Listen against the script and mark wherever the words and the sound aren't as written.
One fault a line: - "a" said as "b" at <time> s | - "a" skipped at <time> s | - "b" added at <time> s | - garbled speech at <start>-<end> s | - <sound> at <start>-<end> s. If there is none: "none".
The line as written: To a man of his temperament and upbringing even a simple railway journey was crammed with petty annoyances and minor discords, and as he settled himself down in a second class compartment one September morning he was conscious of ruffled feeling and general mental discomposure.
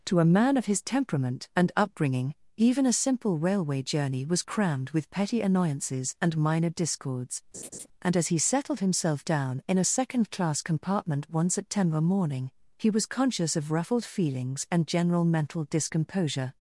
- laugh at 7.5-7.9 s
- "feeling" said as "feelings" at 14.0 s